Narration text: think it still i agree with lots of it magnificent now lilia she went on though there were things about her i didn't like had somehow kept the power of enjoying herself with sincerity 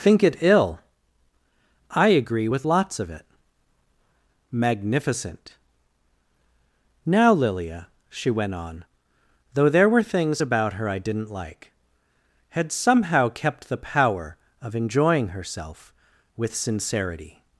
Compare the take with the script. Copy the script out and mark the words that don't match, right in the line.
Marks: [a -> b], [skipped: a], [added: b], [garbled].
think it [still -> ill] i agree with lots of it magnificent now lilia she went on though there were things about her i didn't like had somehow kept the power of enjoying herself with sincerity